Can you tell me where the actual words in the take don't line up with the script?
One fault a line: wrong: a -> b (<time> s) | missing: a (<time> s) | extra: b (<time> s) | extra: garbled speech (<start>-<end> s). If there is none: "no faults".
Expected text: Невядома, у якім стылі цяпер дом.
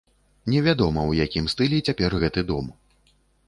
extra: гэты (2.2 s)